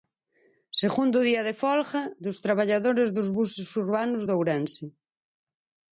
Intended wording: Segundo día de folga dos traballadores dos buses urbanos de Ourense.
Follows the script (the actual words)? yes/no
yes